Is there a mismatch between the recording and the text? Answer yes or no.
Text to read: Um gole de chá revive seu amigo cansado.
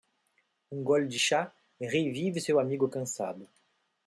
no